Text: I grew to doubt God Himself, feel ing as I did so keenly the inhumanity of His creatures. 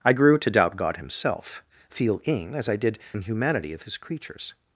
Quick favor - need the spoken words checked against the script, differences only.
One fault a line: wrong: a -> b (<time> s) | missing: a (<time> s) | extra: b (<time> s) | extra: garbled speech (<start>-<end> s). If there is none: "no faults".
missing: so keenly the (3.0 s)